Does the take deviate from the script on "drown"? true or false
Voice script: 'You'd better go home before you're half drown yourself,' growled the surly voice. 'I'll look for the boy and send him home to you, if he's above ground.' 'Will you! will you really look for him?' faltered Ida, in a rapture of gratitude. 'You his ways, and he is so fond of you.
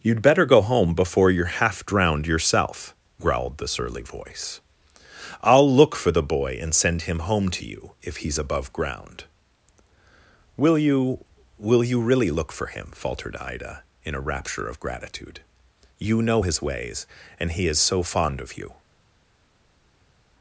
true